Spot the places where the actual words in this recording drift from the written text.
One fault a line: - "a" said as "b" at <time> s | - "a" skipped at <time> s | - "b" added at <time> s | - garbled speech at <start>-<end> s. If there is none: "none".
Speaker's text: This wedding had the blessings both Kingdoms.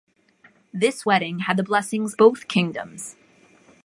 none